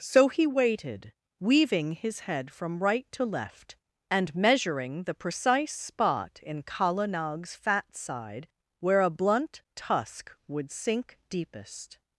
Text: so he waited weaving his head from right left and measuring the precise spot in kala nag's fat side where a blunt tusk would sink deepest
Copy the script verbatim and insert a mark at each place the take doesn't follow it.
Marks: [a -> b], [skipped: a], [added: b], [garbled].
so he waited weaving his head from right [added: to] left and measuring the precise spot in kala nag's fat side where a blunt tusk would sink deepest